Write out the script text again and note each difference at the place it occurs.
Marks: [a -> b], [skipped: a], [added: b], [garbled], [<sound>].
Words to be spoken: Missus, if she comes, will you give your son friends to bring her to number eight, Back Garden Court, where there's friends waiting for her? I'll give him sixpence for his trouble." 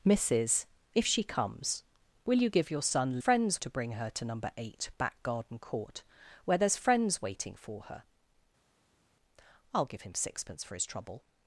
Missus, if she comes, will you give your son friends to bring her to number eight, Back Garden Court, where there's friends waiting for her? I'll give him sixpence for his trouble."